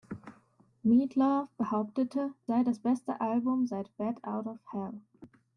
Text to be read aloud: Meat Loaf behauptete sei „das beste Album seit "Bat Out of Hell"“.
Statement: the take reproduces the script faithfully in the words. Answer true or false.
true